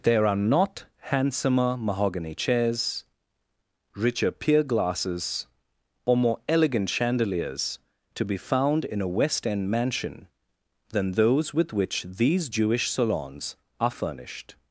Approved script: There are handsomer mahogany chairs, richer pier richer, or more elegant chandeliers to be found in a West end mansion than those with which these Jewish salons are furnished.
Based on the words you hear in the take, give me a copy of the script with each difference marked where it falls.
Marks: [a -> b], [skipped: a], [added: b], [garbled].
There are [added: not] handsomer mahogany chairs, richer pier [richer, -> glasses] or more elegant chandeliers to be found in a West end mansion than those with which these Jewish salons are furnished.